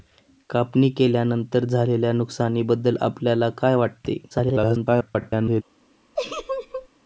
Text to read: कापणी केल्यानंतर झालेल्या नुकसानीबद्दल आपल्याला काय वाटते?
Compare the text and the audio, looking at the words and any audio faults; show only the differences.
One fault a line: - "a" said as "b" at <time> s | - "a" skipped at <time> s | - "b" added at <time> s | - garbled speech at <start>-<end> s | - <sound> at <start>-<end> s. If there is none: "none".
- garbled speech at 4.3-5.6 s
- laugh at 6.2-6.9 s